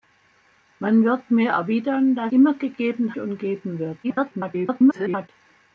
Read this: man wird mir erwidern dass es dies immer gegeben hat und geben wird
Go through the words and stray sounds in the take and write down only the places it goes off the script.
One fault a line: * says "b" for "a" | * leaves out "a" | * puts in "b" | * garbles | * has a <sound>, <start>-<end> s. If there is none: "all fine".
* leaves out "es dies"
* leaves out "hat"
* garbles